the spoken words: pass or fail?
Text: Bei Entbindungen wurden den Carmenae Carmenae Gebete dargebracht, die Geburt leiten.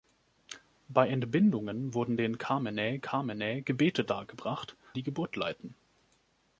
pass